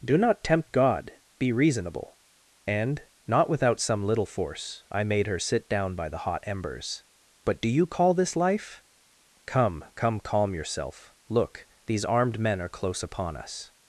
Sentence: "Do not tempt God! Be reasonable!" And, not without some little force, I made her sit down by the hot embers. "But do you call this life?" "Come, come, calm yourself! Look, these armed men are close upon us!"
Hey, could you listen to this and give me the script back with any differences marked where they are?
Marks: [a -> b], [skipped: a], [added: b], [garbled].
"Do not tempt God! Be reasonable!" And, not without some little force, I made her sit down by the hot embers. "But do you call this life?" "Come, come, calm yourself! Look, these armed men are close upon us!"